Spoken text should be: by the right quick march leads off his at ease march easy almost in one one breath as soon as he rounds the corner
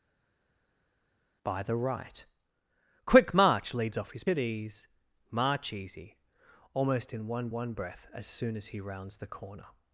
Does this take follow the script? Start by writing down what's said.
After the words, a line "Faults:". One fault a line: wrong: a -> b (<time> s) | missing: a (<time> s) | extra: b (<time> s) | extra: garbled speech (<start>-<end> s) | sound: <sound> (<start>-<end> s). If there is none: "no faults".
by the right quick march leads off his at ease march easy almost in one one breath as soon as he rounds the corner
Faults:
no faults